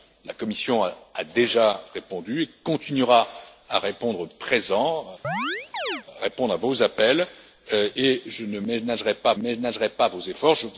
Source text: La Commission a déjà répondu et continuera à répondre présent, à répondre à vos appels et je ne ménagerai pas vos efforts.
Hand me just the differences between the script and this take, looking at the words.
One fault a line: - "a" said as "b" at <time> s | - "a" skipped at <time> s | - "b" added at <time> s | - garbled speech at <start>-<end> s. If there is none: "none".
- "ménagerai pas" added at 9.4 s